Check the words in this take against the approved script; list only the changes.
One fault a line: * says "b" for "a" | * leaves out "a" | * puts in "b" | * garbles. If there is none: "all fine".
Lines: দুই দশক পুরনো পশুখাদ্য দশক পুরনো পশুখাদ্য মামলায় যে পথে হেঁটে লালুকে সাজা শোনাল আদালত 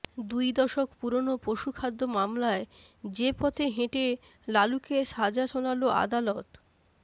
* leaves out "দশক পুরনো পশুখাদ্য"